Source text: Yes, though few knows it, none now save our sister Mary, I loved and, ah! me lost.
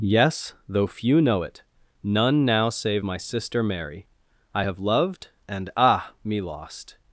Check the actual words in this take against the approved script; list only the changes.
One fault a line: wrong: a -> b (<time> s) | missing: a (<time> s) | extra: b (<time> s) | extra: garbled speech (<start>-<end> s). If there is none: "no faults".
wrong: knows -> know (1.2 s)
wrong: our -> my (3.0 s)
extra: have (4.6 s)